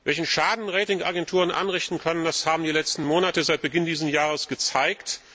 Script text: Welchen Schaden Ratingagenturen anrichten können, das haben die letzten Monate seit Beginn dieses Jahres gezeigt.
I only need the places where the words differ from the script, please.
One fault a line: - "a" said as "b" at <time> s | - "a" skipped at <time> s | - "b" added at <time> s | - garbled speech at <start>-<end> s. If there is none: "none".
none